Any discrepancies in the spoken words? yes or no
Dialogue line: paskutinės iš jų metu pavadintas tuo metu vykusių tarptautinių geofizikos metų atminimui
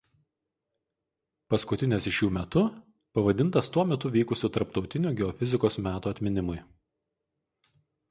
no